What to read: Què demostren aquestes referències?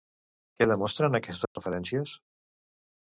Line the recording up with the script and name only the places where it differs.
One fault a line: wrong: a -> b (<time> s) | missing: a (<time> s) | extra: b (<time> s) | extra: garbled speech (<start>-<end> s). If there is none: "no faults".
no faults